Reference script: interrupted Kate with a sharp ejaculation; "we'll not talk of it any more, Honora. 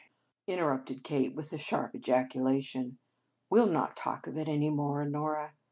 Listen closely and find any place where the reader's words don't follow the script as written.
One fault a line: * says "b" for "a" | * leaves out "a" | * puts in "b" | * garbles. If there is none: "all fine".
all fine